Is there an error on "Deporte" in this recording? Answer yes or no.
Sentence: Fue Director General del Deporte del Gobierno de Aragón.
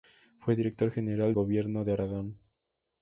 yes